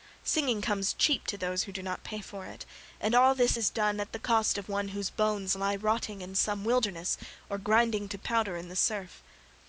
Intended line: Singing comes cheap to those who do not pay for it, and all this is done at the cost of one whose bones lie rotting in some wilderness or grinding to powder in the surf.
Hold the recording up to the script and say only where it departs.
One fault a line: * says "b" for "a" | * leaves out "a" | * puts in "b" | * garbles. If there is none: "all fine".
all fine